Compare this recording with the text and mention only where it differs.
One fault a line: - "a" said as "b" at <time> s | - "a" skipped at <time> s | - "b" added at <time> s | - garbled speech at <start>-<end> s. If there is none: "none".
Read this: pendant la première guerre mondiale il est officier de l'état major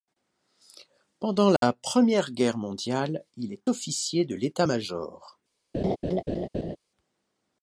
none